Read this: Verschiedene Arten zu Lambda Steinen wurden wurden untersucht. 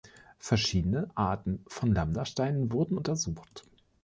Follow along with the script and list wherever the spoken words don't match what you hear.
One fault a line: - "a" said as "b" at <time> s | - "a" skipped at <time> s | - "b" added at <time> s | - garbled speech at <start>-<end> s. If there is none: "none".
- "zu" said as "von" at 1.7 s
- "wurden" skipped at 3.0 s